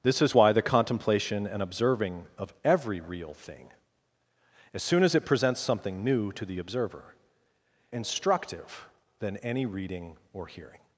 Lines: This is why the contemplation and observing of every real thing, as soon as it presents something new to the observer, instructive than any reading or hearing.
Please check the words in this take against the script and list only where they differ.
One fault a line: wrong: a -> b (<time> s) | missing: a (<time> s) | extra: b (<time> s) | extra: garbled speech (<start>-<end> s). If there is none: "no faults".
no faults